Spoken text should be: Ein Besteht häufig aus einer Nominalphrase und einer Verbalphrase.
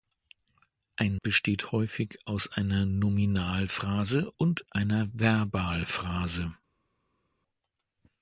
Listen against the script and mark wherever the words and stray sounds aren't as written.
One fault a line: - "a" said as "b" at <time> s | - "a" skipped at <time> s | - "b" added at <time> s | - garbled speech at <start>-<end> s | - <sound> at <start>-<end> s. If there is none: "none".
none